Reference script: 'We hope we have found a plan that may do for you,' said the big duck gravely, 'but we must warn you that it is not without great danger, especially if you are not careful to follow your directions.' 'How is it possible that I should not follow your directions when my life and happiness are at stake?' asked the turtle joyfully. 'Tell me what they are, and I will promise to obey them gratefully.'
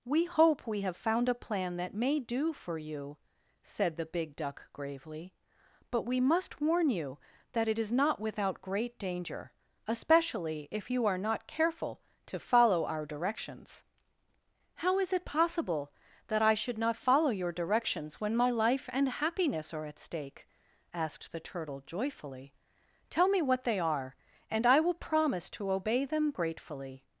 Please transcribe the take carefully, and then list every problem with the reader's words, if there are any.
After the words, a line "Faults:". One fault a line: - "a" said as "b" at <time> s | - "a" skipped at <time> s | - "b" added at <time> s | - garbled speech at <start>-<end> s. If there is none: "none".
'We hope we have found a plan that may do for you,' said the big duck gravely, 'but we must warn you that it is not without great danger, especially if you are not careful to follow our directions.' 'How is it possible that I should not follow your directions when my life and happiness are at stake?' asked the turtle joyfully. 'Tell me what they are, and I will promise to obey them gratefully.'
Faults:
- "your" said as "our" at 12.8 s